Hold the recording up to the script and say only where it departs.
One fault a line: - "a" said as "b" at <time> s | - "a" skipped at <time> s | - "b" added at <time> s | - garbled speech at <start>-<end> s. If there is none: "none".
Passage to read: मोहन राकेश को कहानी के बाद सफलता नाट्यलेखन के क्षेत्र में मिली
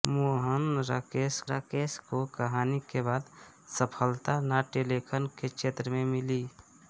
- "राकेश" added at 1.5 s